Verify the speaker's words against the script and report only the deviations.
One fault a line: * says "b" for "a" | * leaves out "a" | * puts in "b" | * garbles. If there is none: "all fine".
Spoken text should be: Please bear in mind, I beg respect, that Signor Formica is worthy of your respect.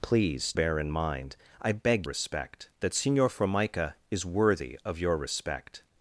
all fine